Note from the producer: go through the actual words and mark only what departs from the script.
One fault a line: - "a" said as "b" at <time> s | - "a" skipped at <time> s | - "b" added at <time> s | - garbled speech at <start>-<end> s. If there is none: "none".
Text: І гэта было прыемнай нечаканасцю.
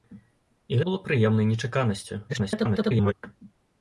- "гэта" skipped at 0.8 s
- garbled speech at 2.3-3.1 s